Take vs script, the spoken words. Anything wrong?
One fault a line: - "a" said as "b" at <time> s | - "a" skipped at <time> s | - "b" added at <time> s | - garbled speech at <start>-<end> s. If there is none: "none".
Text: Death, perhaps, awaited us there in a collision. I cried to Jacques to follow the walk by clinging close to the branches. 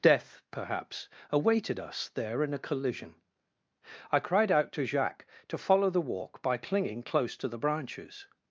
- "out" added at 4.5 s